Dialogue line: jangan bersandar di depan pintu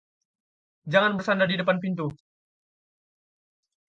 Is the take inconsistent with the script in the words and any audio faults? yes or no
no